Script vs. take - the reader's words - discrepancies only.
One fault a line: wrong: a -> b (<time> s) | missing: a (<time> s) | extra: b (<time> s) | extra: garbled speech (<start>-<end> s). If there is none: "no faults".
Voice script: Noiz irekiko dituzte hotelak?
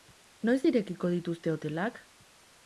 no faults